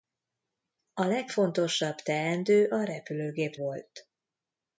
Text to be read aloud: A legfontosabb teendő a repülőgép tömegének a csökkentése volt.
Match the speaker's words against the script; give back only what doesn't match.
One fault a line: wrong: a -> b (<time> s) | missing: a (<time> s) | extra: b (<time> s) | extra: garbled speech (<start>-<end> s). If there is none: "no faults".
missing: tömegének a csökkentése (3.5 s)